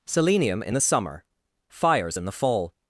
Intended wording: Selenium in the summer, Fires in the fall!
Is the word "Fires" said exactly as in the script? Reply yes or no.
yes